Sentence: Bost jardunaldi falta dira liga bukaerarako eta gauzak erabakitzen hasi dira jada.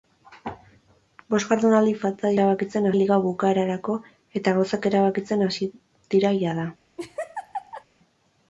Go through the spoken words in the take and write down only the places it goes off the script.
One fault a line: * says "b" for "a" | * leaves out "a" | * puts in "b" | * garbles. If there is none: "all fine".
* says "erabakitzen" for "dira"